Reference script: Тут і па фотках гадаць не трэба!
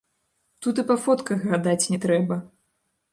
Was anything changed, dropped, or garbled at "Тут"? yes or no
no